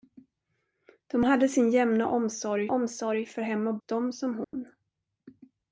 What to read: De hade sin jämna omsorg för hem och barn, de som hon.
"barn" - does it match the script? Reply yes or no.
no